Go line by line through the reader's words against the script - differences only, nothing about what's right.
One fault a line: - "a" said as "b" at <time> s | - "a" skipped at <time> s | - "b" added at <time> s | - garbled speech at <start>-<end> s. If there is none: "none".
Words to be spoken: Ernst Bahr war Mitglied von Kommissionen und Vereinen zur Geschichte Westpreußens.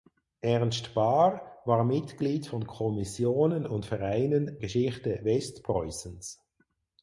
- "zur" skipped at 4.6 s